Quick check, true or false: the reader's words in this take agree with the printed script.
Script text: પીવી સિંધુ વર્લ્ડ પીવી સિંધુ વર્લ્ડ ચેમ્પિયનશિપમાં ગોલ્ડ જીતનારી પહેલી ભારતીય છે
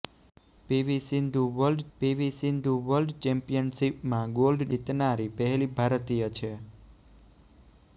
true